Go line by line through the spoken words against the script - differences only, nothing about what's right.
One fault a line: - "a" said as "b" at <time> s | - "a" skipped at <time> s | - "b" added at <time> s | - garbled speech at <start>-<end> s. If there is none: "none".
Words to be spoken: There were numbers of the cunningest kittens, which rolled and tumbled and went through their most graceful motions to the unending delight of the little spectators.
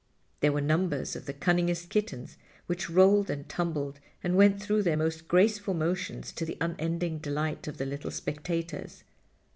none